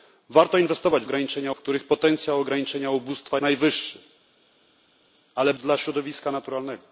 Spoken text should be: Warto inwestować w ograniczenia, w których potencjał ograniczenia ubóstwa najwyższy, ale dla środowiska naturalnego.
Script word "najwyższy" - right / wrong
right